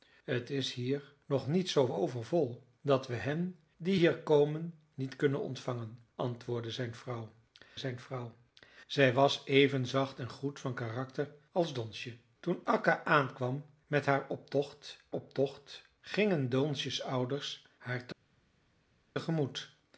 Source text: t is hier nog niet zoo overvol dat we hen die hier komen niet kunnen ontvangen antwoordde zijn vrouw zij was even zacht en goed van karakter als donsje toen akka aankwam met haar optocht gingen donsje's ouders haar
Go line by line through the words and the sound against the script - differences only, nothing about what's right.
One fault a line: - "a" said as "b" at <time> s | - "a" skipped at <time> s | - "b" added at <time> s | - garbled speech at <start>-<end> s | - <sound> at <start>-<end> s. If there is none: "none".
- "zijn vrouw" added at 7.8 s
- "optocht" added at 15.1 s